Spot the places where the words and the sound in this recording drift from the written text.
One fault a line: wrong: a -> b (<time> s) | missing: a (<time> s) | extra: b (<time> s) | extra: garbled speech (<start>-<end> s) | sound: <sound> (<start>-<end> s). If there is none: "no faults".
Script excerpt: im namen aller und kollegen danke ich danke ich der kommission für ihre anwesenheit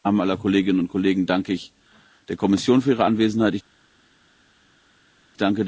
extra: kolleginnen (0.4 s)
missing: danke ich (1.7 s)